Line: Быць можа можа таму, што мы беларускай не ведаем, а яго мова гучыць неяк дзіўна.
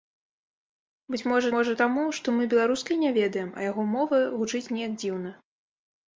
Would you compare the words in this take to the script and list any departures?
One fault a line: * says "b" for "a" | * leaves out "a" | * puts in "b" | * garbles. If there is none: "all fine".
all fine